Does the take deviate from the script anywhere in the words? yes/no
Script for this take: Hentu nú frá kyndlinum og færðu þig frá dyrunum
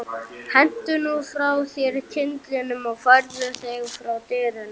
yes